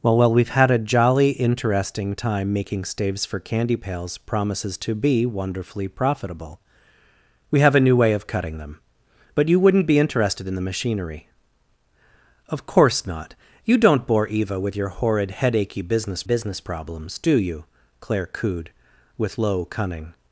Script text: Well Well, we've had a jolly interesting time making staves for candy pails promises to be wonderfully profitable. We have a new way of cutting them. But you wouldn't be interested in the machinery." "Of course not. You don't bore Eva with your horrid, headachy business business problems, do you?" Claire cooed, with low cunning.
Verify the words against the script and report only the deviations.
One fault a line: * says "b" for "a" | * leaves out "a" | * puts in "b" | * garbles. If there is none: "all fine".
all fine